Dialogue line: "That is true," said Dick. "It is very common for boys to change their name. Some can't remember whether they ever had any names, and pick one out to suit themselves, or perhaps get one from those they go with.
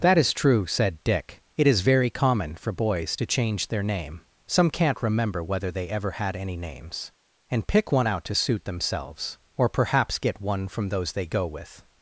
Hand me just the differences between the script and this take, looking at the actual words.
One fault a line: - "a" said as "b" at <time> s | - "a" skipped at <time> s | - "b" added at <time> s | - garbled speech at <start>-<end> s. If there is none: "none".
none